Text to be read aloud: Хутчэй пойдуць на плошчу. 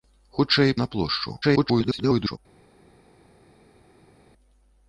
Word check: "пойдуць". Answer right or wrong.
wrong